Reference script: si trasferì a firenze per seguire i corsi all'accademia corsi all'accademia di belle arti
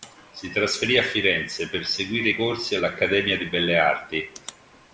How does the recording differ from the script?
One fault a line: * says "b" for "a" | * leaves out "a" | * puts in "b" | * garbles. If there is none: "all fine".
* leaves out "corsi all'accademia"